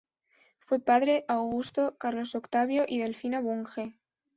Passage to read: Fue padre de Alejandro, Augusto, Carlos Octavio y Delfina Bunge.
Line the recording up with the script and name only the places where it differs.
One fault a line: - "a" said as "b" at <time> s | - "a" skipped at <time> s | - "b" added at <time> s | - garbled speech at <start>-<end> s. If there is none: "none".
- "de Alejandro" skipped at 1.3 s